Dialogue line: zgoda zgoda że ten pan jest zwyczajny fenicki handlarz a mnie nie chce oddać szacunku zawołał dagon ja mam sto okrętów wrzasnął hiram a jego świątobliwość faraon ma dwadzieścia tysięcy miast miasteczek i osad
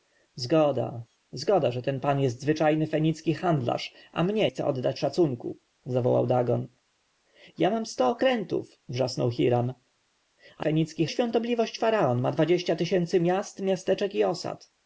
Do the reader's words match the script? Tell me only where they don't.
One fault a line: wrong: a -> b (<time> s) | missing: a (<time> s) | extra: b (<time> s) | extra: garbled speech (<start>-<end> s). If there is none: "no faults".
missing: nie (4.5 s)
wrong: jego -> fenicki (10.6 s)